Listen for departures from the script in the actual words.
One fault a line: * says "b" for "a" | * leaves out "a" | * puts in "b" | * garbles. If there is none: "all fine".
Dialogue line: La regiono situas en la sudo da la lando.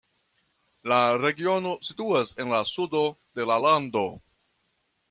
* says "de" for "da"